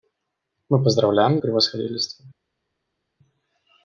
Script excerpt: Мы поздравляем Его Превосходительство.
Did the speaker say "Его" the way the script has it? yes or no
no